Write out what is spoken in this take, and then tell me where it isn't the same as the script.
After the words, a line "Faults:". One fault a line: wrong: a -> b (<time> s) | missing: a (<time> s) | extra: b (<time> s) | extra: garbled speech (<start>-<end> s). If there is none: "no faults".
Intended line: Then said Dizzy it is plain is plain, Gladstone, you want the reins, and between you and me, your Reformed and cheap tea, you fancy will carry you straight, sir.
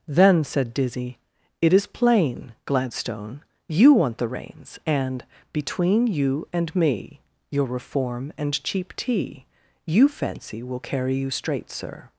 Then said Dizzy it is plain, Gladstone, you want the reins, and between you and me, your Reform and cheap tea, you fancy will carry you straight, sir.
Faults:
missing: is plain (2.5 s)
wrong: Reformed -> Reform (7.7 s)